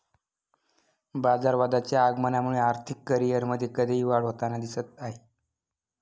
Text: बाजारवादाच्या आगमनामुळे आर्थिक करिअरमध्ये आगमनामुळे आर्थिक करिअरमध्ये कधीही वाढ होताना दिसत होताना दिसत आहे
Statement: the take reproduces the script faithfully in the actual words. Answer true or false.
false